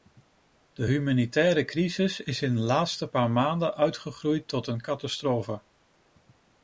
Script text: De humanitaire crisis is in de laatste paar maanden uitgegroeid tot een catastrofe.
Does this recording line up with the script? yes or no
yes